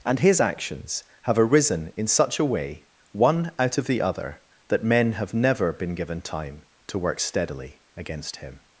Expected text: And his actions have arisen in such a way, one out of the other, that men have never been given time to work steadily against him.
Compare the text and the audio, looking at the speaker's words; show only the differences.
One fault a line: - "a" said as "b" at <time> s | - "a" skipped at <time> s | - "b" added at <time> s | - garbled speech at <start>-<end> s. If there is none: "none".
none